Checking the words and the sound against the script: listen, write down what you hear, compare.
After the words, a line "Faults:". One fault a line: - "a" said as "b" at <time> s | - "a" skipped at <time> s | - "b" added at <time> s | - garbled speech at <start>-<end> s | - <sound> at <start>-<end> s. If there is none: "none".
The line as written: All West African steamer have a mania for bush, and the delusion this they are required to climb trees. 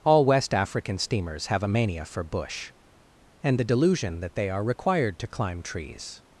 All West African steamers have a mania for bush, and the delusion that they are required to climb trees.
Faults:
- "steamer" said as "steamers" at 1.0 s
- "this" said as "that" at 4.2 s